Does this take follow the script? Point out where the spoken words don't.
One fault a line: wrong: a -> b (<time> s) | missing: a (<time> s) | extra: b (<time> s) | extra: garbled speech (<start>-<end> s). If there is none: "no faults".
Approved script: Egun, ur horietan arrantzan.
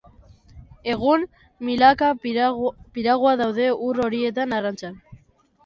extra: milaka piragua daude (1.7 s)